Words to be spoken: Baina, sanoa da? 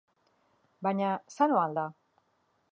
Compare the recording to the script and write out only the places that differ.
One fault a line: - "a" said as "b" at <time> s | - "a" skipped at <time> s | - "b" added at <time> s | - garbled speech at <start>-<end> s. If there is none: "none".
- "al" added at 1.7 s